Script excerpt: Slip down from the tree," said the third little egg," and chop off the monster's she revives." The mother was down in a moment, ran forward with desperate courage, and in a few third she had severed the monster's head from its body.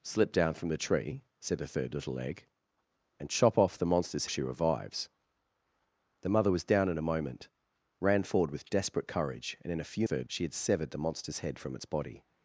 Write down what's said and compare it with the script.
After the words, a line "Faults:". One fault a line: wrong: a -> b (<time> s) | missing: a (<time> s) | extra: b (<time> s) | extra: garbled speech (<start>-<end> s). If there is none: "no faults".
Slip down from the tree," said the third little egg," and chop off the monster's she revives." The mother was down in a moment, ran forward with desperate courage, and in a few third she had severed the monster's head from its body.
Faults:
no faults